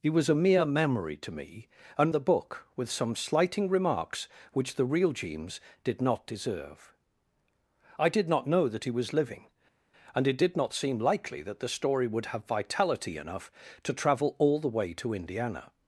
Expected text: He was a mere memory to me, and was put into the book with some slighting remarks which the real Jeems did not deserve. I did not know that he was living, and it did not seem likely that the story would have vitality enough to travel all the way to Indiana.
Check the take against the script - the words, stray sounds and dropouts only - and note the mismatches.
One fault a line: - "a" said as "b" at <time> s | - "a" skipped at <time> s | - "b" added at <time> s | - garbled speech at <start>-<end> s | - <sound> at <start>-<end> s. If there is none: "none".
- "was put into" skipped at 2.1 s